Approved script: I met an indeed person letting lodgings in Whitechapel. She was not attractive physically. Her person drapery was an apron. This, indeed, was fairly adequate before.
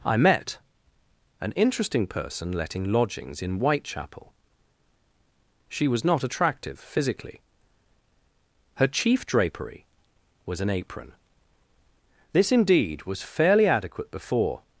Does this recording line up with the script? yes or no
no